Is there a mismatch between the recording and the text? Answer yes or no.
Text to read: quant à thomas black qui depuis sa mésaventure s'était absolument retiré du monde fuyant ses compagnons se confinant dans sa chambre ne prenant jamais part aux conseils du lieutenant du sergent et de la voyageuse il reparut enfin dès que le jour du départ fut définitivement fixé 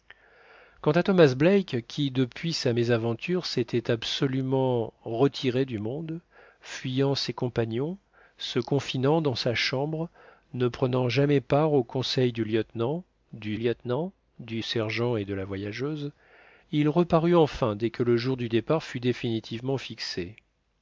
yes